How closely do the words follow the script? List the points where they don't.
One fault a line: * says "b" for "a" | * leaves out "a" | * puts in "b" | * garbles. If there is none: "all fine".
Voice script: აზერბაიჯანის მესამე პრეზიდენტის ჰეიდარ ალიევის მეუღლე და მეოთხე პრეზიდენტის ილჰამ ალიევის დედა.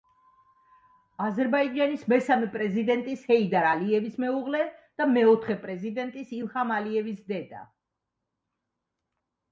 all fine